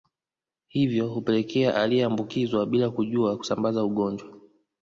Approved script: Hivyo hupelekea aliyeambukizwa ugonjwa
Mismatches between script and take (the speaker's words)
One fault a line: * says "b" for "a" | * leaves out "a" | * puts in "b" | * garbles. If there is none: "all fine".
* puts in "bila kujua kusambaza"